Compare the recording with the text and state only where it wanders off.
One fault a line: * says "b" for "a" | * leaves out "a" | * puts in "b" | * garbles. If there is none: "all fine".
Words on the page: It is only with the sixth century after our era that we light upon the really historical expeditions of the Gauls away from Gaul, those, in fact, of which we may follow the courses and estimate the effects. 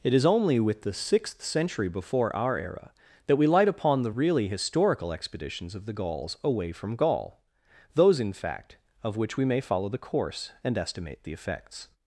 * says "before" for "after"
* says "course" for "courses"